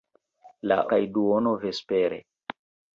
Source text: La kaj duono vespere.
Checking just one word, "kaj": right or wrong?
right